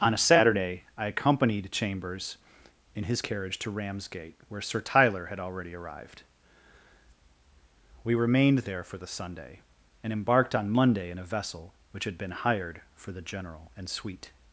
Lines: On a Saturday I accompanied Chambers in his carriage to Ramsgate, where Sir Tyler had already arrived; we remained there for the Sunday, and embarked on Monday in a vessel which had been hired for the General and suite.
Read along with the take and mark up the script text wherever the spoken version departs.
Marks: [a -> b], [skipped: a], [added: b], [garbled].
On a Saturday I accompanied Chambers in his carriage to Ramsgate, where Sir Tyler had already arrived; we remained there for the Sunday, and embarked on Monday in a vessel which had been hired for the General and suite.